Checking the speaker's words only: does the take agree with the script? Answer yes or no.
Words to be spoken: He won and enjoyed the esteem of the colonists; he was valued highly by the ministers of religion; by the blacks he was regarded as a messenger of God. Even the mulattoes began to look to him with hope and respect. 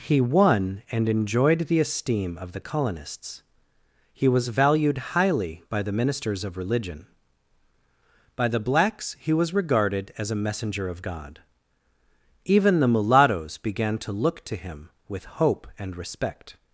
yes